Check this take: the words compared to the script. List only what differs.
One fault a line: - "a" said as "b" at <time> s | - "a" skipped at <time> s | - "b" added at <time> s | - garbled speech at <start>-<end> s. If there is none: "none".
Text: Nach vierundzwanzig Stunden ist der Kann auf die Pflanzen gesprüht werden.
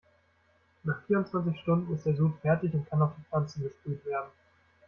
- "Sud fertig und" added at 2.1 s